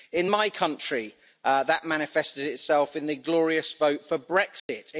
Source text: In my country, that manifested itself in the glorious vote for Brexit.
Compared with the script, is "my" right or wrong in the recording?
right